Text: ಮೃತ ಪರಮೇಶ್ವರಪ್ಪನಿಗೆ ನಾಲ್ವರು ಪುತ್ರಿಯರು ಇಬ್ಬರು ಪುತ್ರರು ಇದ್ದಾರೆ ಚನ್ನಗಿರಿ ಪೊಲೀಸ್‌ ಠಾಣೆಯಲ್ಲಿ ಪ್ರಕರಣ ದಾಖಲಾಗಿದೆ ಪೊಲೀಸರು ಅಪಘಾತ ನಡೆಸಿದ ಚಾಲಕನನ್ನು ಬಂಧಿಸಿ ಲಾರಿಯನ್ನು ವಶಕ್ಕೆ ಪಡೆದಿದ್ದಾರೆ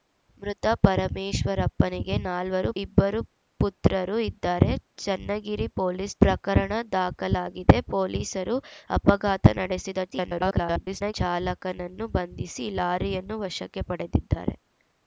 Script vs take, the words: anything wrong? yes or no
yes